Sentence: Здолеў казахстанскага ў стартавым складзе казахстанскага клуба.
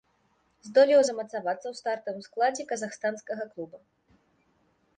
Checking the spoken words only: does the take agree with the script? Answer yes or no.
no